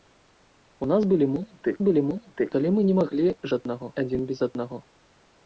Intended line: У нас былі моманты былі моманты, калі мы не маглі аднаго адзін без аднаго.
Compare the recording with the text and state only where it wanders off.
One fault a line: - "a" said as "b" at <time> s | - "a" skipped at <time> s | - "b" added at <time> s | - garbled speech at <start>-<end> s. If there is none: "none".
none